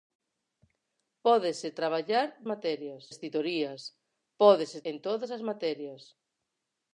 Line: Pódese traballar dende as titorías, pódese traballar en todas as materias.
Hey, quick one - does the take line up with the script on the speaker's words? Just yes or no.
no